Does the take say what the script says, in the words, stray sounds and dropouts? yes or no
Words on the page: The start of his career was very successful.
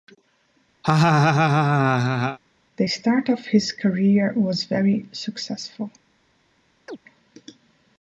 no